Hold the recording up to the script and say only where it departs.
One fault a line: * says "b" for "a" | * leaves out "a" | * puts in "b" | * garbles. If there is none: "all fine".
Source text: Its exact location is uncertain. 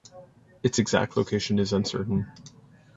all fine